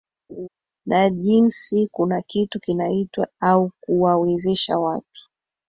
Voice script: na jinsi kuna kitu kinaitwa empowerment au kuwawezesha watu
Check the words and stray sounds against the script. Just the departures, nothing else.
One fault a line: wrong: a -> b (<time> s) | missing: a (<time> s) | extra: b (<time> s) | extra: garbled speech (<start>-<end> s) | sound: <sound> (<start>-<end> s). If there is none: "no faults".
sound: laugh (0.3-0.5 s)
missing: empowerment (3.3 s)